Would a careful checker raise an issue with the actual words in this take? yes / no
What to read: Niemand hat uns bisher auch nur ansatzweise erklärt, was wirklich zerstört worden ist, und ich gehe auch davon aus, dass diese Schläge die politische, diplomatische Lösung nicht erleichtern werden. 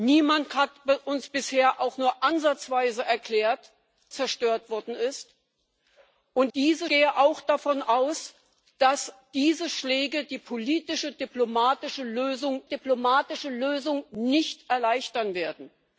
yes